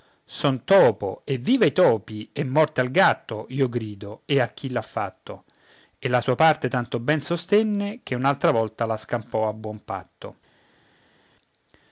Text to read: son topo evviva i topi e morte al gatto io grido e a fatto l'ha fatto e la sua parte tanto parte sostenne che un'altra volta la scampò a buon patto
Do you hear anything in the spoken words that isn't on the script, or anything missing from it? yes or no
yes